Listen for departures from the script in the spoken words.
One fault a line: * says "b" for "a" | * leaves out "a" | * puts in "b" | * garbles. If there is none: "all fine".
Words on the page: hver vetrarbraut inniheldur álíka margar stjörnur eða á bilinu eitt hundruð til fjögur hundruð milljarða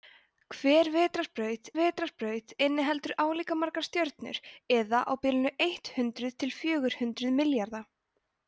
* puts in "vetrarbraut"